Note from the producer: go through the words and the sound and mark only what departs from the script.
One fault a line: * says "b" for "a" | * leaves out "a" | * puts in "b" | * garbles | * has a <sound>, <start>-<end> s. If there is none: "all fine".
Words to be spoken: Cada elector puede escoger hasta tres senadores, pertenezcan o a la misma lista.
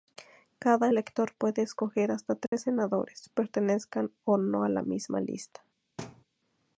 * has a dropout, 2.5-2.5 s
* puts in "no"
* has a thud, 6.0-6.2 s